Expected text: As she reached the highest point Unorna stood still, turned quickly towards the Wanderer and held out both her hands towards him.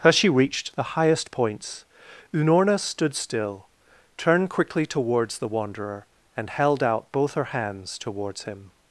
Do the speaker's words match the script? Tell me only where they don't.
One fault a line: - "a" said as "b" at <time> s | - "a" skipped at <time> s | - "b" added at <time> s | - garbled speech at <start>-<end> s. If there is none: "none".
- "point" said as "points" at 1.3 s